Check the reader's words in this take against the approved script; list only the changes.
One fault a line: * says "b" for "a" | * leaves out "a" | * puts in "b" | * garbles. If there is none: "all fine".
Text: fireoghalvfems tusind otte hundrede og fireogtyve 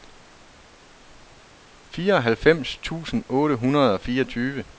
all fine